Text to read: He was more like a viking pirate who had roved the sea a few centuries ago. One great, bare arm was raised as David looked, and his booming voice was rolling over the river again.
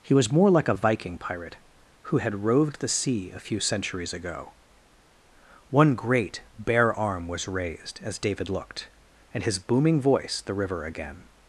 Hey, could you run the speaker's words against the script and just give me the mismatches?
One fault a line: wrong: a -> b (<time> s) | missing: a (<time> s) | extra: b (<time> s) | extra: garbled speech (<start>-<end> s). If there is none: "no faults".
missing: was rolling over (10.4 s)